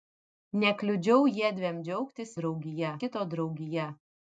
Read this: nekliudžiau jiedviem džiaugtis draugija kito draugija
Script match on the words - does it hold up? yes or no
yes